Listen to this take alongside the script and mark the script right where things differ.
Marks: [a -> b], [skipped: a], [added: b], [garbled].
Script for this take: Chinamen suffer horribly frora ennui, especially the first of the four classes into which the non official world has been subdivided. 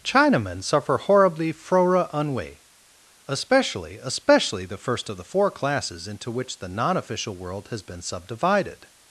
Chinamen suffer horribly frora ennui, especially [added: especially] the first of the four classes into which the non official world has been subdivided.